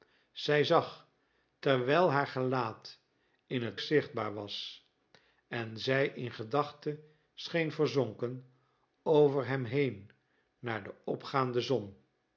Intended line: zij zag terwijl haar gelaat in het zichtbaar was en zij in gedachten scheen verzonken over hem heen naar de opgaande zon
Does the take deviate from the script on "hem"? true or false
false